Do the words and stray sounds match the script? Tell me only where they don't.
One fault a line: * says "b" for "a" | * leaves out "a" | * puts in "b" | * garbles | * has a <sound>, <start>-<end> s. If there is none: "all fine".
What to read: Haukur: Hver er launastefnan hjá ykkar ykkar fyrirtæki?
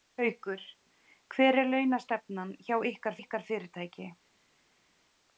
all fine